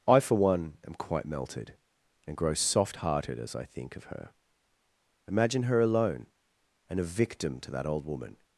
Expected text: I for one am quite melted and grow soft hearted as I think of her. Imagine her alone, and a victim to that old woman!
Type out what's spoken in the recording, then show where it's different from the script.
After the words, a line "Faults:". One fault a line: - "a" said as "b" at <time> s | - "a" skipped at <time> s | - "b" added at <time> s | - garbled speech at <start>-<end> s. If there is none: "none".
I for one am quite melted and grow soft hearted as I think of her. Imagine her alone, and a victim to that old woman!
Faults:
none